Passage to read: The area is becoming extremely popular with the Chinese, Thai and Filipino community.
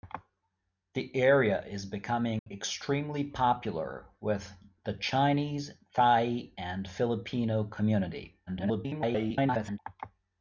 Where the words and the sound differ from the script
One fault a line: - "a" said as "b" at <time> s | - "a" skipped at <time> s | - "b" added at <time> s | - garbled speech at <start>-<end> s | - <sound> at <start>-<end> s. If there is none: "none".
- dropout at 2.4-2.5 s
- garbled speech at 8.5-9.8 s